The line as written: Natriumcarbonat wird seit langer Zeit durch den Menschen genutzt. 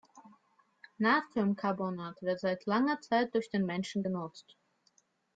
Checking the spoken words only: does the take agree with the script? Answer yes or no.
yes